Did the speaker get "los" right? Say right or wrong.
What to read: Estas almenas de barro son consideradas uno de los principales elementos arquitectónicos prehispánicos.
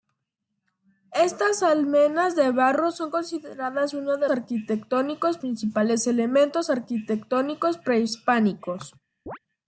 wrong